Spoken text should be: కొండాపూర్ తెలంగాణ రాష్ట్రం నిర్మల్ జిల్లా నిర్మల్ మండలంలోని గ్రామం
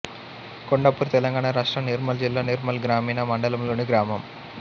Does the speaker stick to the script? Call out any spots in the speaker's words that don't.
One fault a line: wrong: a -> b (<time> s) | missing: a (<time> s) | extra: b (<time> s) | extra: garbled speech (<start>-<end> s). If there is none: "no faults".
extra: గ్రామీణ (2.9 s)